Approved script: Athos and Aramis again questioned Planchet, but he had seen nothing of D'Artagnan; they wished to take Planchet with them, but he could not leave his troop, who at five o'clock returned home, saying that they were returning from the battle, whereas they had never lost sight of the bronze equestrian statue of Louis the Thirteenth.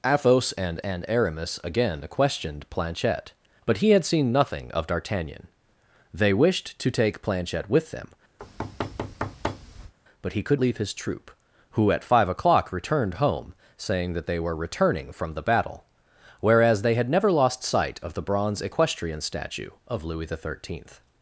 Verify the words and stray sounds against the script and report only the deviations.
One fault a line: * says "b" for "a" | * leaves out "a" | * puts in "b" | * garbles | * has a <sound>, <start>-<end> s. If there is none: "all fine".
* puts in "and"
* has a thud, 8.4-9.9 s
* leaves out "not"